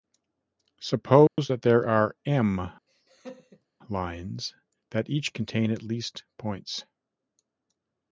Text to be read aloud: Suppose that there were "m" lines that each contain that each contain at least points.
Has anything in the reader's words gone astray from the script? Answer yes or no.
yes